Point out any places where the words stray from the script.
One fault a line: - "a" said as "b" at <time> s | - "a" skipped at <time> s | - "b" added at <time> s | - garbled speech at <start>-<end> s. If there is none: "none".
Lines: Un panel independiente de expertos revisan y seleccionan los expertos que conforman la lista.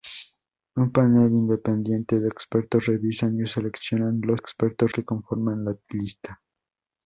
none